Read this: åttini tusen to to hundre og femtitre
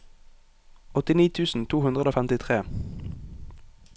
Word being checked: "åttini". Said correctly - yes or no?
yes